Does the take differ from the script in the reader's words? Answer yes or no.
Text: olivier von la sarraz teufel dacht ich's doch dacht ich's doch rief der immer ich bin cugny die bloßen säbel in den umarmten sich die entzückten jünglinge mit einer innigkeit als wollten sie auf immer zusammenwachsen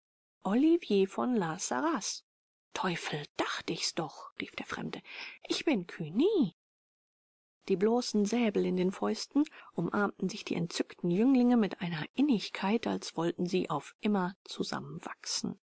yes